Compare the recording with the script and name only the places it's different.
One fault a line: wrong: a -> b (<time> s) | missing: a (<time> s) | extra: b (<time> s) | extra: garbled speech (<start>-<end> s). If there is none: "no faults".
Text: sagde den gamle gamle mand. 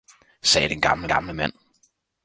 no faults